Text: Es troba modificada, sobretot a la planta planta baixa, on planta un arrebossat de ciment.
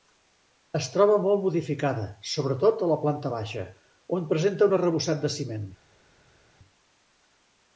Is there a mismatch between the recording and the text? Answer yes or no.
yes